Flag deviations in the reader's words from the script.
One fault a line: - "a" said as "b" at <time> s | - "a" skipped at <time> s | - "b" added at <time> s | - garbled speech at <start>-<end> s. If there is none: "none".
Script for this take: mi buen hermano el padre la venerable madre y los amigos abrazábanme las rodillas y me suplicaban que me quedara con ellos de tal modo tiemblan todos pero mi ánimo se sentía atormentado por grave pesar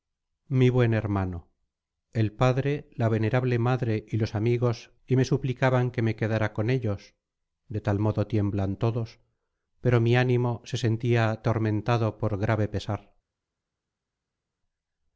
- "abrazábanme las rodillas" skipped at 4.9 s